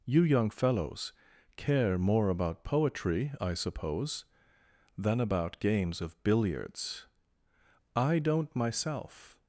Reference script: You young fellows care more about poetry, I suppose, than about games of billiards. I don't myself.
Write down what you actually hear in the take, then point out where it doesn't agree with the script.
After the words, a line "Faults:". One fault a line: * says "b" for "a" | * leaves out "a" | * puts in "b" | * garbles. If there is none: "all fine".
You young fellows care more about poetry, I suppose, than about games of billiards. I don't myself.
Faults:
all fine